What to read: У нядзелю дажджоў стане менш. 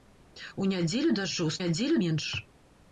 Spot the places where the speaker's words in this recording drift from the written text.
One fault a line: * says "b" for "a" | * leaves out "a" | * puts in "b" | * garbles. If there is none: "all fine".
* says "нядзелю" for "стане"